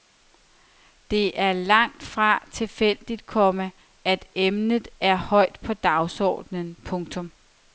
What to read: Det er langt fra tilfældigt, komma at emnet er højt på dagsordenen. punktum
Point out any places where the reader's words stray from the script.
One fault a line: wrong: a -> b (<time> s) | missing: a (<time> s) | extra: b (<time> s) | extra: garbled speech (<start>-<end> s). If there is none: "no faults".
no faults